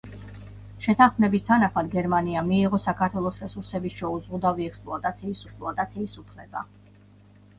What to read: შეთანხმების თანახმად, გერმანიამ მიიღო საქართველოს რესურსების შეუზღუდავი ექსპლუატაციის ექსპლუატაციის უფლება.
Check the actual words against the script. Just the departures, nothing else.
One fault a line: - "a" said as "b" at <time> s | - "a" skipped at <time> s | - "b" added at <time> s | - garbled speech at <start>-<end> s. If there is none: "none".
none